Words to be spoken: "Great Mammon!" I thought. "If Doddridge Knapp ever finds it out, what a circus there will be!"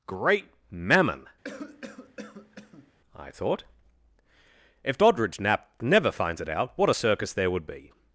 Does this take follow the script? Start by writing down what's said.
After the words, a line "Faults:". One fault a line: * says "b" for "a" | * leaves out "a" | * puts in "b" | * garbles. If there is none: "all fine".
"Great Mammon!" I thought. "If Doddridge Knapp never finds it out, what a circus there would be!"
Faults:
* says "never" for "ever"
* says "would" for "will"